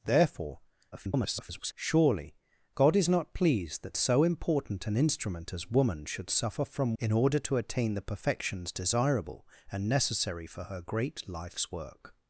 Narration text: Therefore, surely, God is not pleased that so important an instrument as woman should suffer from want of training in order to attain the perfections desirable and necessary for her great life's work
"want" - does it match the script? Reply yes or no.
no